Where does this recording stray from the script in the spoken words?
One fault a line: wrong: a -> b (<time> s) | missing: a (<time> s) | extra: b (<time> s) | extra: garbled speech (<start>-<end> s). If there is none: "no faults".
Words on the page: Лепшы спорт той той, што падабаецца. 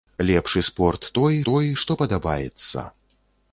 no faults